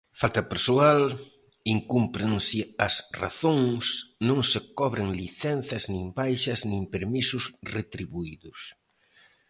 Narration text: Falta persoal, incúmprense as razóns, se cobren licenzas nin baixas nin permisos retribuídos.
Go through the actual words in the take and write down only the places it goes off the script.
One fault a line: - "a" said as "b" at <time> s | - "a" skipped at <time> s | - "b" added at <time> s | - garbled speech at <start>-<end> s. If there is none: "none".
- "non" added at 4.3 s